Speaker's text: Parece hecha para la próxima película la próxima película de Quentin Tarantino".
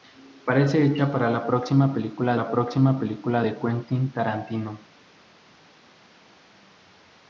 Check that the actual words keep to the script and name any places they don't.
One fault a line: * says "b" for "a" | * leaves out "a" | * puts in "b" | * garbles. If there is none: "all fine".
all fine